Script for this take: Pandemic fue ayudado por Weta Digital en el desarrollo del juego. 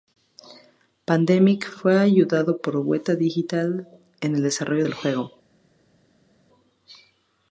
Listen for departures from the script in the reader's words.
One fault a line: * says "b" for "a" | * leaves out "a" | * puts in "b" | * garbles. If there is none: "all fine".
all fine